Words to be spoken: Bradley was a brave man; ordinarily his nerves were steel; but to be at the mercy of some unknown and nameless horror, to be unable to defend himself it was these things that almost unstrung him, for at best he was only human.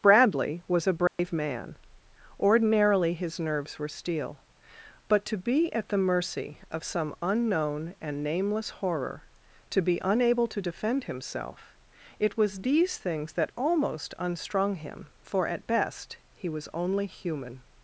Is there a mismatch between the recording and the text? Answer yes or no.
no